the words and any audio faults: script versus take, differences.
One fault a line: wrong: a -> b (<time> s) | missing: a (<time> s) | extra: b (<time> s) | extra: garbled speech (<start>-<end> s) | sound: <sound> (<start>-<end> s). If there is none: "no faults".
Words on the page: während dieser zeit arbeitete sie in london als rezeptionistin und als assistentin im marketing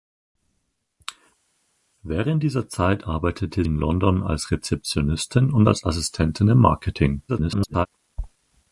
missing: sie (3.6 s)
extra: garbled speech (7.3-7.9 s)